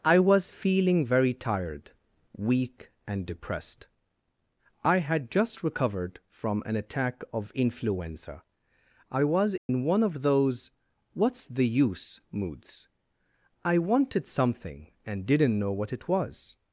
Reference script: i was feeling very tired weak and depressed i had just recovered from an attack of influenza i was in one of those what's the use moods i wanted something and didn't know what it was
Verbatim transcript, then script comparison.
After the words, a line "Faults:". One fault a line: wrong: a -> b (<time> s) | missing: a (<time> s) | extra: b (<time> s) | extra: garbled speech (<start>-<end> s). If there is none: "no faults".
i was feeling very tired weak and depressed i had just recovered from an attack of influenza i was in one of those what's the use moods i wanted something and didn't know what it was
Faults:
no faults